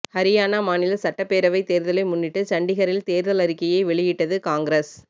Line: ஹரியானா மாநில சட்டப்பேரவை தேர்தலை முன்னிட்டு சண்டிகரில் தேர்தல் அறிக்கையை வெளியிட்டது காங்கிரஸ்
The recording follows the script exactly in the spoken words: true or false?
true